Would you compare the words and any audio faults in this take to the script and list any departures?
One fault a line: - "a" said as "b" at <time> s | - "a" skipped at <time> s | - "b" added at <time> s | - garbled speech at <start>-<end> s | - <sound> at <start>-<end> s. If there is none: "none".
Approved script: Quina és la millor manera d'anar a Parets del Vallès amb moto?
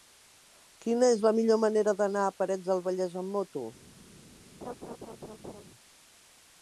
- laugh at 4.6-5.6 s